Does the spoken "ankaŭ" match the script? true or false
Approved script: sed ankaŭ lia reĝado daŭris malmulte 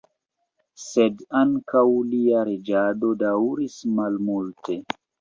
true